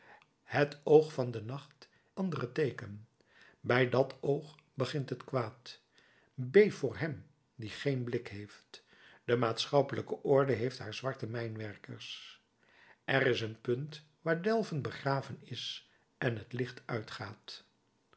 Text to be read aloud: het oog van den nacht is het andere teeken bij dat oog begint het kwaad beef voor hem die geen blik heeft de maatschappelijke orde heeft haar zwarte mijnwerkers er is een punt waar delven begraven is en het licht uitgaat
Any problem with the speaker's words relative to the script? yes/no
yes